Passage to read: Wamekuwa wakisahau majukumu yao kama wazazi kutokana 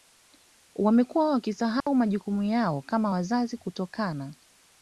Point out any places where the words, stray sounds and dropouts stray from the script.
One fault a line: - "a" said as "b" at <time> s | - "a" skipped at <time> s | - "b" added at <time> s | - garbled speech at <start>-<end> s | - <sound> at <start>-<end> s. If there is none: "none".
- dropout at 1.8-1.9 s